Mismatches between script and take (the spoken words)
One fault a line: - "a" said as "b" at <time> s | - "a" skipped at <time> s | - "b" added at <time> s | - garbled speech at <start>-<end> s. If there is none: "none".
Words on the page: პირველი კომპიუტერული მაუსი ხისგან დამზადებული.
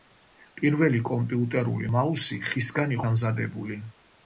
none